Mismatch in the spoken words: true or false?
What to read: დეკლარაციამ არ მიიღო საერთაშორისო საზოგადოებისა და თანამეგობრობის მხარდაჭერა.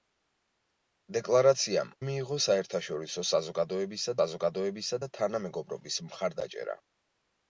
true